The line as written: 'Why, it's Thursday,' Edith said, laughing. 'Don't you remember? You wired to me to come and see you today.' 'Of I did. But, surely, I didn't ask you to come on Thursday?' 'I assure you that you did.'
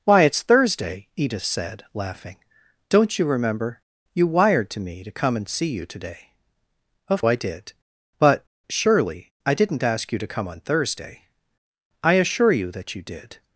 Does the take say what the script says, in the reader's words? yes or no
yes